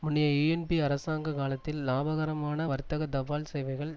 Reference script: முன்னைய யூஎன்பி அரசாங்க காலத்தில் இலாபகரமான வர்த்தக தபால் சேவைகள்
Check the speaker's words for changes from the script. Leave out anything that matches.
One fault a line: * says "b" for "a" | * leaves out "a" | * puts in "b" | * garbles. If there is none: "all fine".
all fine